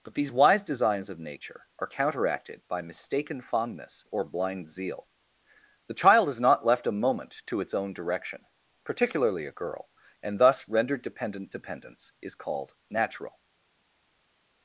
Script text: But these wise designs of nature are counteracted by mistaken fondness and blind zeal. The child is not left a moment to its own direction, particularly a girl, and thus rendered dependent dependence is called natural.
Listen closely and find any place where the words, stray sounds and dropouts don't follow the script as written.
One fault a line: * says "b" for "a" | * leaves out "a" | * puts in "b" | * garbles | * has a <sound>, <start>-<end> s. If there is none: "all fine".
* says "or" for "and"